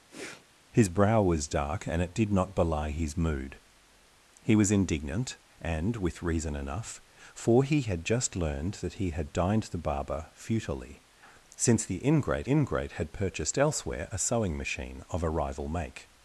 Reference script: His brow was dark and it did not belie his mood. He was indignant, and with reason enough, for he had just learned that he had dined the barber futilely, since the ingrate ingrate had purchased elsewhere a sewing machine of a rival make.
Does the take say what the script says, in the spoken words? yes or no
yes